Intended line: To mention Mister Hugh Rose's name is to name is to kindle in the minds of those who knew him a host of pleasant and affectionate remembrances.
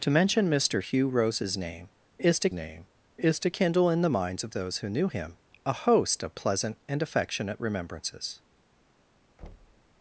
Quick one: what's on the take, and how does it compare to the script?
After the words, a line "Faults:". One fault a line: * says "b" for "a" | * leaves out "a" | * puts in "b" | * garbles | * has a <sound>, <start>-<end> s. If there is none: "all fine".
To mention Mister Hugh Rose's name is to name is to kindle in the minds of those who knew him a host of pleasant and affectionate remembrances.
Faults:
* has a thud, 9.4-9.9 s